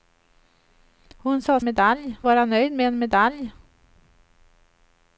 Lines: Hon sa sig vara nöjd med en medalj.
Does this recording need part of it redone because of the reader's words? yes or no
yes